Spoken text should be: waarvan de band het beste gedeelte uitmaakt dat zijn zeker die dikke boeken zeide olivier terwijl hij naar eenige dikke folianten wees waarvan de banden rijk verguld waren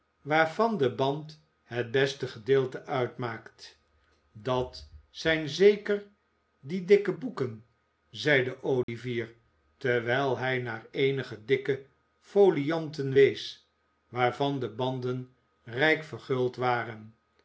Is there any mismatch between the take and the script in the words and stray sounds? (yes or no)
yes